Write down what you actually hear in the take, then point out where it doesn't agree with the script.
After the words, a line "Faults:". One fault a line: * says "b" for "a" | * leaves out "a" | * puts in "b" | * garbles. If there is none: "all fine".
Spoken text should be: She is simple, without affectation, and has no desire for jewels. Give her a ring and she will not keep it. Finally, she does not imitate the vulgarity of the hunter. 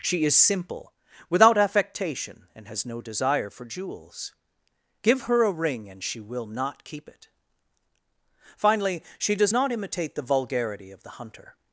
She is simple, without affectation, and has no desire for jewels. Give her a ring and she will not keep it. Finally, she does not imitate the vulgarity of the hunter.
Faults:
all fine